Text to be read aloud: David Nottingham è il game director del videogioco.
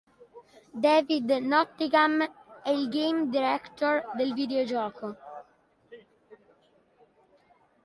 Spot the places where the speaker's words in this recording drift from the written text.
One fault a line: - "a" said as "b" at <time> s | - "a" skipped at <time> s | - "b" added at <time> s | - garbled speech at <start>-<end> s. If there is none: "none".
none